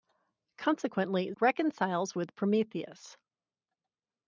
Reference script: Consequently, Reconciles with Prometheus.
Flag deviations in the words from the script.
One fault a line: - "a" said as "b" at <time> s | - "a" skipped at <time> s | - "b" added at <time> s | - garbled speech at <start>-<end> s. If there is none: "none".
none